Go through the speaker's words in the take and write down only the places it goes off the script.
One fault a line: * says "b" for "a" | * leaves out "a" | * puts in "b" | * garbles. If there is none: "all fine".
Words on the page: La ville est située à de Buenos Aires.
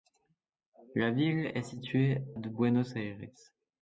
* leaves out "à"